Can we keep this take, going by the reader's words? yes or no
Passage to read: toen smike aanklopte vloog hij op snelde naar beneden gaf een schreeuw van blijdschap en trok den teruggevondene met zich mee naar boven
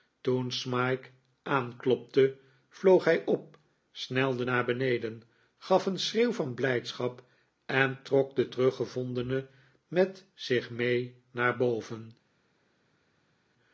yes